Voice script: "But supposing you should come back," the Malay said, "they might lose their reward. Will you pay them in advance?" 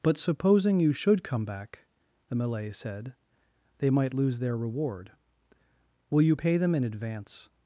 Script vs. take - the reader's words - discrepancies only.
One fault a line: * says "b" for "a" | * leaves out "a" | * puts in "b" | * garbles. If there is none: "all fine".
all fine